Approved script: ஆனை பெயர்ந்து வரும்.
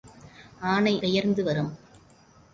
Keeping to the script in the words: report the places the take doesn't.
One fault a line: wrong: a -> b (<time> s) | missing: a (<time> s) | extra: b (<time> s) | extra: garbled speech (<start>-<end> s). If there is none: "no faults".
no faults